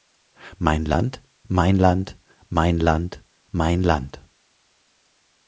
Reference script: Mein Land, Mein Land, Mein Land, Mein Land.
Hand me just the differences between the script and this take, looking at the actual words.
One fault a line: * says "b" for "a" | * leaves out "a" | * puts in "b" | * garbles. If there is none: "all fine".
all fine